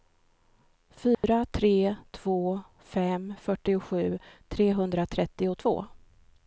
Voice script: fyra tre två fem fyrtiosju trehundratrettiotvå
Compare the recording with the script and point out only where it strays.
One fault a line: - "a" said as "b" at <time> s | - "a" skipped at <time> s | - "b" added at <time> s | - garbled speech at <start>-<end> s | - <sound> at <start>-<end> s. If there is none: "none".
- dropout at 1.1-1.2 s